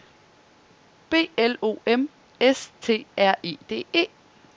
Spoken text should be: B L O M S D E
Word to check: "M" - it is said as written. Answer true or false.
true